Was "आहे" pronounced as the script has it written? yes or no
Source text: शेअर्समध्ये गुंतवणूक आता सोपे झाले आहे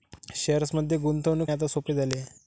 yes